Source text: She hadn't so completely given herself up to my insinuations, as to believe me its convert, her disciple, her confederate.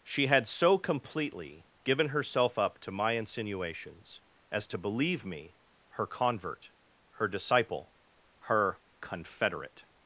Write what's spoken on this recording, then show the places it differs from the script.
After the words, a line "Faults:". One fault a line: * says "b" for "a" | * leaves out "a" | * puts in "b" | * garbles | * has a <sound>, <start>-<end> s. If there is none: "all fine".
She had so completely given herself up to my insinuations, as to believe me her convert, her disciple, her confederate.
Faults:
* says "had" for "hadn't"
* says "her" for "its"